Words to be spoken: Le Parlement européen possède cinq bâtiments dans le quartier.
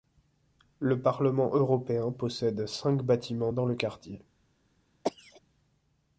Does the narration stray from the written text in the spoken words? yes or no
no